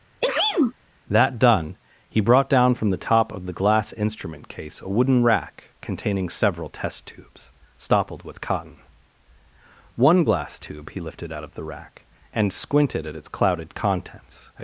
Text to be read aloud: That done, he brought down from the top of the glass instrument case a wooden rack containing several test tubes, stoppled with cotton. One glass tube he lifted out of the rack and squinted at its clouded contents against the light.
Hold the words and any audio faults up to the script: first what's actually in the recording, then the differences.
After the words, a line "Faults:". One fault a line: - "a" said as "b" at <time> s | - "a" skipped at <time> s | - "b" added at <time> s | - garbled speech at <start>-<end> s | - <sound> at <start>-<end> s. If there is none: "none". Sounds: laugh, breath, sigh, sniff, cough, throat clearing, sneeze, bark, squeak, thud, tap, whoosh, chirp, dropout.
That done, he brought down from the top of the glass instrument case a wooden rack containing several test tubes, stoppled with cotton. One glass tube he lifted out of the rack and squinted at its clouded contents.
Faults:
- sneeze at 0.2-0.7 s
- "against the light" skipped at 14.5 s